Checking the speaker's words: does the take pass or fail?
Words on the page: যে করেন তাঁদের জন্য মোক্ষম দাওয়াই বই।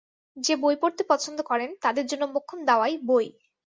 fail